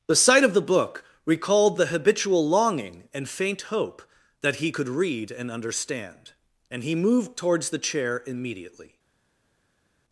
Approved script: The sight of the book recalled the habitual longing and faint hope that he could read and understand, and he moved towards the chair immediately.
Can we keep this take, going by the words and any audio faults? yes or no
yes